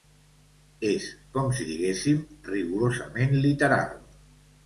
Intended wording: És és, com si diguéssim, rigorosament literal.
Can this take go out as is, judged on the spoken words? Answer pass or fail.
fail